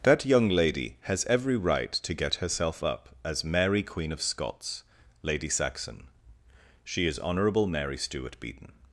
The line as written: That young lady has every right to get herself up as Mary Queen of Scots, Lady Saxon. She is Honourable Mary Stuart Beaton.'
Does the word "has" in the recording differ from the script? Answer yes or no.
no